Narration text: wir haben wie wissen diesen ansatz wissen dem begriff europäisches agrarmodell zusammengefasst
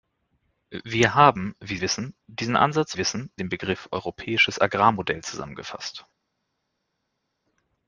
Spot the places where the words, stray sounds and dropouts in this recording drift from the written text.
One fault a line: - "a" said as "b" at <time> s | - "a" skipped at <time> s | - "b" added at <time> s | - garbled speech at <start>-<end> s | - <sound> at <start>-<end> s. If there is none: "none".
none